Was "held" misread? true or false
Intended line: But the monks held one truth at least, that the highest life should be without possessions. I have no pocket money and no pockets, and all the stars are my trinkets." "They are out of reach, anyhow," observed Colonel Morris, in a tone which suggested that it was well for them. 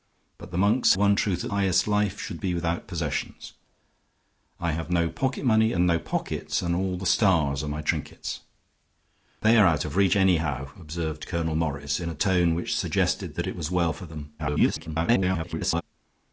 true